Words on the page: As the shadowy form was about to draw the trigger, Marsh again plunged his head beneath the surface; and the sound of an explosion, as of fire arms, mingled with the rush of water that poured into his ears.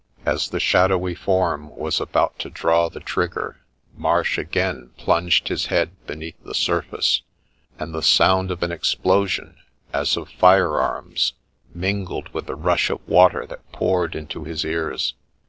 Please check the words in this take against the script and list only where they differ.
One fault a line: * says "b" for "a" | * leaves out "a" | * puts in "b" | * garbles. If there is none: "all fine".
all fine